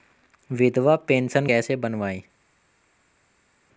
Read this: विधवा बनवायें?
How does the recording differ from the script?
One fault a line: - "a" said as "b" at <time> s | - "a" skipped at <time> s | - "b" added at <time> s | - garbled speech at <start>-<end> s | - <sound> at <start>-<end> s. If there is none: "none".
- "पेंशन कैसे" added at 0.9 s